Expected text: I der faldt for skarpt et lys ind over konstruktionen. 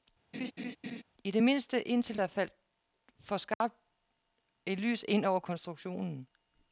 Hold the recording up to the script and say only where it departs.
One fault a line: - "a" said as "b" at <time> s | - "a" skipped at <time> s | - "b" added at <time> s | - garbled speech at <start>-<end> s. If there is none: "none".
- "det mindste indtil" added at 1.3 s